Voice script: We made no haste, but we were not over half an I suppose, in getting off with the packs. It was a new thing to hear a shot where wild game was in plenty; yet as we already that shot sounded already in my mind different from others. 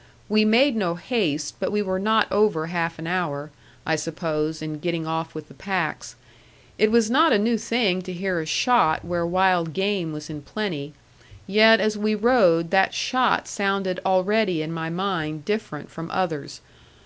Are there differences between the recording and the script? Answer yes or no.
yes